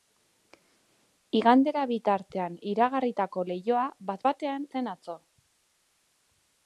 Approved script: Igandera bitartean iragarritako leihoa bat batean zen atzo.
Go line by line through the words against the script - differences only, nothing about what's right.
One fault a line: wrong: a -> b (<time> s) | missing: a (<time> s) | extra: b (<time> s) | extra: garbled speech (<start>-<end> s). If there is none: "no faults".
no faults